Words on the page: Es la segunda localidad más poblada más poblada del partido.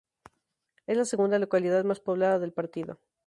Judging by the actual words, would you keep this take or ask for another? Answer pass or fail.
fail